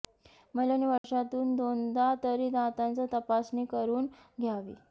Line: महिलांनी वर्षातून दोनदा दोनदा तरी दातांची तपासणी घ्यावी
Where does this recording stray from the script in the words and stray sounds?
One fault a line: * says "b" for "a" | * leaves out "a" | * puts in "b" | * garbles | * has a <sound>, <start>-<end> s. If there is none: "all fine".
* has a dropout, 1.0-1.0 s
* leaves out "दोनदा"
* puts in "करून"